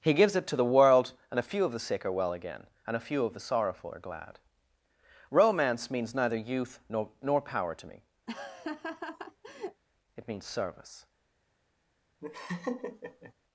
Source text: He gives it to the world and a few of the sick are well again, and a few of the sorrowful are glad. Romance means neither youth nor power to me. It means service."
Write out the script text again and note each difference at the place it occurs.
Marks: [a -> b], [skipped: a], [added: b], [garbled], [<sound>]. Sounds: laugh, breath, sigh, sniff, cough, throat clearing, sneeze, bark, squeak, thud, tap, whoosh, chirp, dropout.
He gives it to the world and a few of the sick are well again, and a few of the sorrowful are glad. Romance means neither youth nor [added: nor] power to me. [laugh] It means service." [laugh]